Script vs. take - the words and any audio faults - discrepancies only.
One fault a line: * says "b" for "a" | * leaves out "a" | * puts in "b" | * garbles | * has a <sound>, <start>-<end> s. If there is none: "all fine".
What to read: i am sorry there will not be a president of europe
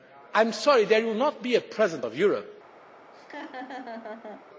* has a laugh, 3.1-4.5 s